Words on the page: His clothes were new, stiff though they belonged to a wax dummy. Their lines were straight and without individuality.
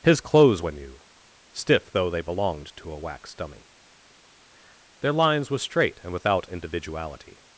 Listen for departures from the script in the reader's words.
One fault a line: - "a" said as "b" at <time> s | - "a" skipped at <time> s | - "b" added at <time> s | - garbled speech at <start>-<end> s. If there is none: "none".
none